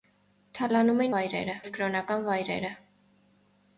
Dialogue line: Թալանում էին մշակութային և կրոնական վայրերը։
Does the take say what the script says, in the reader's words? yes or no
no